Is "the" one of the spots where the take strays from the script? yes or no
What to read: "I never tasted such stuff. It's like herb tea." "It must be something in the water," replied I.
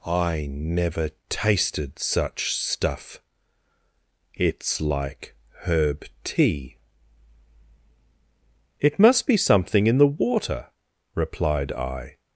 no